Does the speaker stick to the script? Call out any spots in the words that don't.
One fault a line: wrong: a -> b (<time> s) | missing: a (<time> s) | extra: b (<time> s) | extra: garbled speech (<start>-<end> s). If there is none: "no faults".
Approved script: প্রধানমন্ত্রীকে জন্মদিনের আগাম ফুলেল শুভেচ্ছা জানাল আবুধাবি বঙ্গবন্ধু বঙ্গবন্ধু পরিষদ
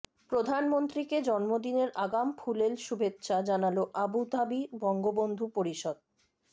missing: বঙ্গবন্ধু (5.5 s)